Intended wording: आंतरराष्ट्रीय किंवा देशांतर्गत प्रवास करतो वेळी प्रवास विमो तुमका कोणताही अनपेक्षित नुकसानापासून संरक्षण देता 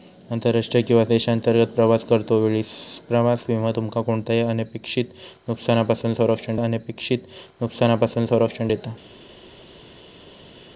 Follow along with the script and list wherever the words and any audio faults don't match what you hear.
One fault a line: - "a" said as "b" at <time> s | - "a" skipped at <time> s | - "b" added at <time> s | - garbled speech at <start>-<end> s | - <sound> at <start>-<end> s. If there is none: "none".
- "अनपेक्षित नुकसानापासून संरक्षण" added at 6.6 s